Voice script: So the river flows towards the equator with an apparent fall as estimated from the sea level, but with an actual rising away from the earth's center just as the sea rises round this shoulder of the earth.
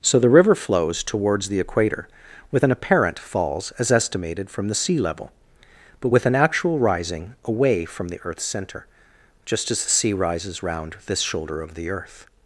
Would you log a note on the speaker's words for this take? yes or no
yes